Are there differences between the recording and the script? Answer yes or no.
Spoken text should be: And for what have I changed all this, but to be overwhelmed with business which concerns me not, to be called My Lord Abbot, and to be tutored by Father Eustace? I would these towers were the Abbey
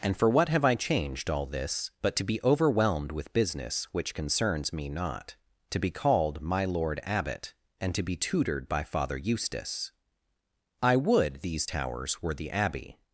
no